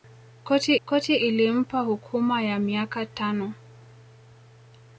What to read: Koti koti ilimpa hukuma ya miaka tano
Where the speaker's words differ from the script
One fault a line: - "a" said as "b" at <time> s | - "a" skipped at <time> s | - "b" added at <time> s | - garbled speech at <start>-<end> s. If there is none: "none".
none